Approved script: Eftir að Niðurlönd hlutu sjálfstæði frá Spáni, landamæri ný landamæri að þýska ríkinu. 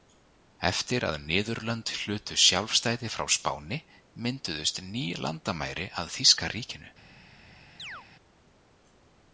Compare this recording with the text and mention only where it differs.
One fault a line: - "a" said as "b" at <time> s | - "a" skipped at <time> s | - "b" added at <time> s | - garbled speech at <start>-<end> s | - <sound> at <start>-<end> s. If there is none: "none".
- "landamæri" said as "mynduðust" at 4.2 s
- chirp at 7.8-8.1 s